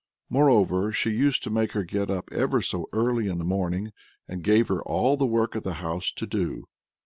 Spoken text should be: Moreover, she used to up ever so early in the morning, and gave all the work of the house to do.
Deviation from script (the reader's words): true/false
true